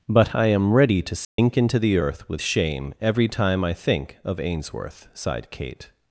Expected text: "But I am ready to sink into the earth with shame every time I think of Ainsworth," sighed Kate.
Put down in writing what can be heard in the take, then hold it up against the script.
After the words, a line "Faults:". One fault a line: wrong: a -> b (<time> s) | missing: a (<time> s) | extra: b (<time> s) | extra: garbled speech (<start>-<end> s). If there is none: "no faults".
"But I am ready to sink into the earth with shame every time I think of Ainsworth," sighed Kate.
Faults:
no faults